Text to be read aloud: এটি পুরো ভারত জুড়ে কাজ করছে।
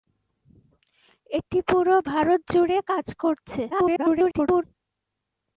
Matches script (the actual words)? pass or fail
fail